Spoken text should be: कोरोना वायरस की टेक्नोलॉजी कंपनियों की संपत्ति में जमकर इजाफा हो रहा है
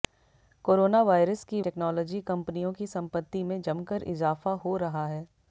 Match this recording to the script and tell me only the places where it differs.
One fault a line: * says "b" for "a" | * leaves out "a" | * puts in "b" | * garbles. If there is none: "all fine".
all fine